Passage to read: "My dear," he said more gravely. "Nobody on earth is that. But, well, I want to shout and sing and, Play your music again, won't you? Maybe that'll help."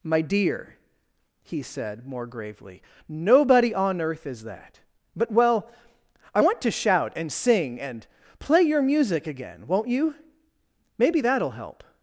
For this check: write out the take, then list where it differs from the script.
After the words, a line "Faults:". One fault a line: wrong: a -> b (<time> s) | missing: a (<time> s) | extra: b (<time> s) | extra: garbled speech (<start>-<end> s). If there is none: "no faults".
"My dear," he said more gravely. "Nobody on earth is that. But, well, I want to shout and sing and, Play your music again, won't you? Maybe that'll help."
Faults:
no faults